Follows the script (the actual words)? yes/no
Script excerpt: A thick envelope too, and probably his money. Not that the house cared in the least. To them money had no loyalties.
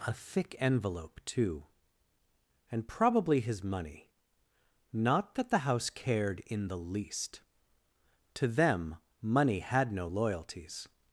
yes